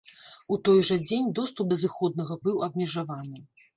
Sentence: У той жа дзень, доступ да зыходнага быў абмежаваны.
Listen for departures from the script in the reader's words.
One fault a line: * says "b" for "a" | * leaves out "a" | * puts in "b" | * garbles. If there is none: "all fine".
all fine